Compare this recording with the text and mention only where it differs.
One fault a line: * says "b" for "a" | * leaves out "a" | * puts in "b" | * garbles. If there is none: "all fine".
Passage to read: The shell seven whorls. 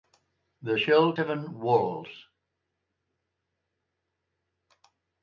all fine